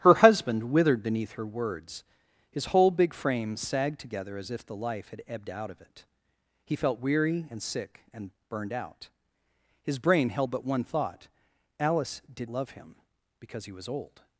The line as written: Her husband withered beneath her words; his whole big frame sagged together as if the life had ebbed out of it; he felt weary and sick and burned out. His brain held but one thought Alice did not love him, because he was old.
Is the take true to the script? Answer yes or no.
no